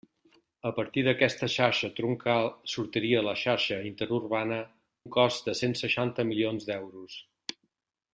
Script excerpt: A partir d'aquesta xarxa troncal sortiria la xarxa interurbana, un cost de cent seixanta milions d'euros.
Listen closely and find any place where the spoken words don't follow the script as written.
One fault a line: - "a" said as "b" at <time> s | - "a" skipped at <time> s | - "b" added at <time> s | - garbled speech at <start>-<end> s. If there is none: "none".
none